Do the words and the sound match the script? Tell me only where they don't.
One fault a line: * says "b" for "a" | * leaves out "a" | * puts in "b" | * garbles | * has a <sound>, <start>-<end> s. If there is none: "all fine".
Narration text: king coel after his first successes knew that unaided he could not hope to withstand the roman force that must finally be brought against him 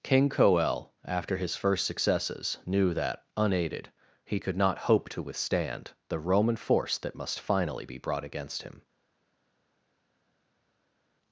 all fine